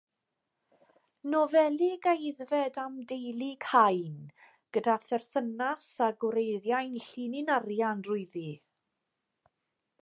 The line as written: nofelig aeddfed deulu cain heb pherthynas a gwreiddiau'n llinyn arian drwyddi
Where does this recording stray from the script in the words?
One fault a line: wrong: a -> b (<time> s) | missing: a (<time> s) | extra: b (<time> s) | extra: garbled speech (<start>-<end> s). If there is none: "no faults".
extra: am (2.9 s)
wrong: heb -> gyda (4.8 s)